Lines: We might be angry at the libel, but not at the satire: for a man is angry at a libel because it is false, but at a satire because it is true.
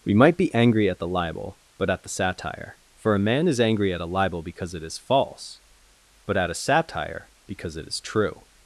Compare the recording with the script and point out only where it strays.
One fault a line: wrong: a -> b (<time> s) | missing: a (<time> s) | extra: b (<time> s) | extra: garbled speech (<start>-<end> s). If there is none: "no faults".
missing: not (1.9 s)